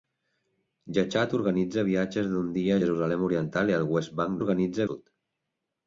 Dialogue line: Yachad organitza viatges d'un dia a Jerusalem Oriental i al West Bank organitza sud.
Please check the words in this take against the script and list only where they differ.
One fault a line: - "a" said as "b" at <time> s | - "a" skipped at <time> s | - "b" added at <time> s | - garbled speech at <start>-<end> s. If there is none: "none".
none